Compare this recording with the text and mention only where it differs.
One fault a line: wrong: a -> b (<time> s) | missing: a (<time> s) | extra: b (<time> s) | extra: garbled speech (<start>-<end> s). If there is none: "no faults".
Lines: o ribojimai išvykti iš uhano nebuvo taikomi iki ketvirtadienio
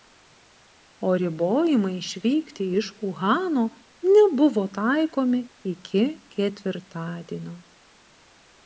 no faults